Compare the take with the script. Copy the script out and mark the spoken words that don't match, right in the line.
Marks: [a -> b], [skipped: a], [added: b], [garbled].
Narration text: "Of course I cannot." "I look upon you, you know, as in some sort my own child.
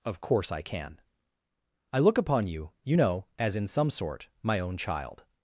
"Of course I [cannot." -> can] "I look upon you, you know, as in some sort my own child.